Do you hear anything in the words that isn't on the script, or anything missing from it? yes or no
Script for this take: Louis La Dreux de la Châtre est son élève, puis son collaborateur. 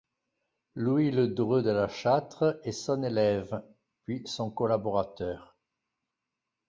yes